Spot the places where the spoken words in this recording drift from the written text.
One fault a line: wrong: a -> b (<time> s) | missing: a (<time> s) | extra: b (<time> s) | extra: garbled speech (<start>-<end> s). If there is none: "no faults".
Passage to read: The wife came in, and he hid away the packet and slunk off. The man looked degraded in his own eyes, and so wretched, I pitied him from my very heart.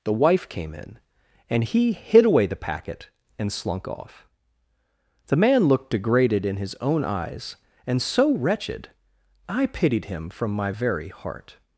no faults